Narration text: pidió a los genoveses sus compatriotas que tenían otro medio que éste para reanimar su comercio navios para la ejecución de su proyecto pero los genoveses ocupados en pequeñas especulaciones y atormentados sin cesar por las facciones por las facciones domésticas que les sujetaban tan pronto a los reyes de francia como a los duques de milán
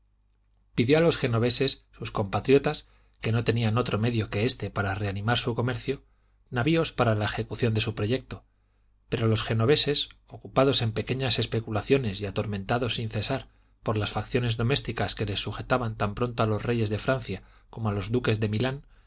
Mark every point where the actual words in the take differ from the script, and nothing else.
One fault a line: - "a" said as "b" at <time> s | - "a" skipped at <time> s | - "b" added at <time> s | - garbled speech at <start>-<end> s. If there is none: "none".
- "no" added at 3.3 s
- "por las facciones" skipped at 14.6 s